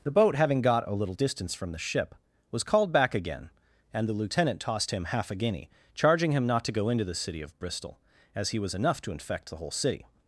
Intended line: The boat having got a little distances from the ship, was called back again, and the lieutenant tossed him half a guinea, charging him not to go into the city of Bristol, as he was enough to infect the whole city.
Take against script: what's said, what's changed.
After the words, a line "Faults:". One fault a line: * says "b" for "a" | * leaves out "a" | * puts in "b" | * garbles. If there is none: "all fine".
The boat having got a little distance from the ship, was called back again, and the lieutenant tossed him half a guinea, charging him not to go into the city of Bristol, as he was enough to infect the whole city.
Faults:
* says "distance" for "distances"